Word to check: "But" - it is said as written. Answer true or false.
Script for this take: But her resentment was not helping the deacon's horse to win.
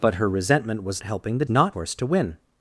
true